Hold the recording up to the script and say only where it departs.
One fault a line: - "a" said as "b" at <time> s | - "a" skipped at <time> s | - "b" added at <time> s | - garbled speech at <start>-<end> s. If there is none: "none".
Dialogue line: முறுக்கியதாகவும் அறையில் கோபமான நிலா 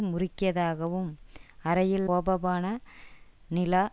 none